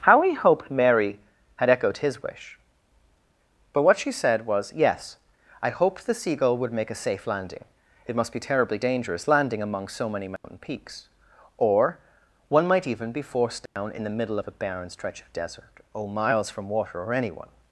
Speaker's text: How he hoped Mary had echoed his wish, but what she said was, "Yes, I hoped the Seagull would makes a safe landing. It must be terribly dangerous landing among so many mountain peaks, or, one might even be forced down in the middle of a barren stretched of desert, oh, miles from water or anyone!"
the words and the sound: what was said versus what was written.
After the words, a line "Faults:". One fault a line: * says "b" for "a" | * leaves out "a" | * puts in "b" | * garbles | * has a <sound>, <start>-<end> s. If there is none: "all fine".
How he hoped Mary had echoed his wish, but what she said was, "Yes, I hoped the Seagull would make a safe landing. It must be terribly dangerous landing among so many mountain peaks, or, one might even be forced down in the middle of a barren stretch of desert, oh, miles from water or anyone!"
Faults:
* says "make" for "makes"
* has a dropout, 10.4-10.4 s
* has a dropout, 13.7-13.8 s
* says "stretch" for "stretched"